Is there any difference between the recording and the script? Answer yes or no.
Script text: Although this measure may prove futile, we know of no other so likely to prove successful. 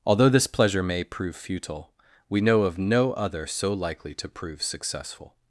yes